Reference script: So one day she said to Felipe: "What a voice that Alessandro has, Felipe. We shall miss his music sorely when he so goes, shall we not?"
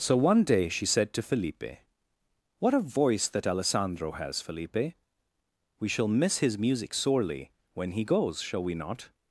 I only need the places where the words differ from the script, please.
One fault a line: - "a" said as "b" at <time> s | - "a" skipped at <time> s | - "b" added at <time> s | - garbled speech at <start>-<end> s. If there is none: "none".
- "so" skipped at 8.0 s